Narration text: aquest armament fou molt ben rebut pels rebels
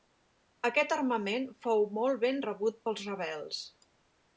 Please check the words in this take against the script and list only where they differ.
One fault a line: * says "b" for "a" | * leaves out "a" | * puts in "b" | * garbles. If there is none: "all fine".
all fine